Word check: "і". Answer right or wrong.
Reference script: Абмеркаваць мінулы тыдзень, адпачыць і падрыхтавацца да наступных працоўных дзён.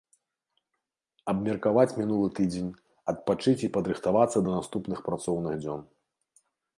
right